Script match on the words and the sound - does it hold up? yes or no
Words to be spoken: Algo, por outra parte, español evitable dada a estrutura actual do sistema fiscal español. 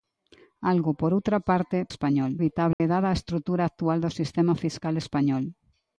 no